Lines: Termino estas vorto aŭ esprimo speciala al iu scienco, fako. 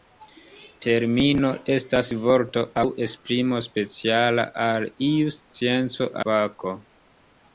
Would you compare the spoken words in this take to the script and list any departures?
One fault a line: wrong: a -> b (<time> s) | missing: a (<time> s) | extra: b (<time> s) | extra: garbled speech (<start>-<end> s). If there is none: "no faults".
no faults